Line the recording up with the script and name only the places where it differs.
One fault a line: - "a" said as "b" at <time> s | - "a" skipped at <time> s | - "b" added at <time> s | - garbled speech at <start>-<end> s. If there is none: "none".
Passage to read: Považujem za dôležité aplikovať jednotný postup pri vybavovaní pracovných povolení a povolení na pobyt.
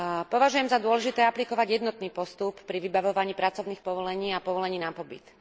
none